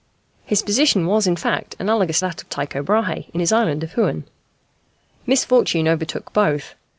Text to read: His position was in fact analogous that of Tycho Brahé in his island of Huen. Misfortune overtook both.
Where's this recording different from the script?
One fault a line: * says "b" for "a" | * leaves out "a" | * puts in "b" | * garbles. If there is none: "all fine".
all fine